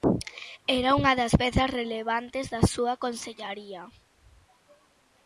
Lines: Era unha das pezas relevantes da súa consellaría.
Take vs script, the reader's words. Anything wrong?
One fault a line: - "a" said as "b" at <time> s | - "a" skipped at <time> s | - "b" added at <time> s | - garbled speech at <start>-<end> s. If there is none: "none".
none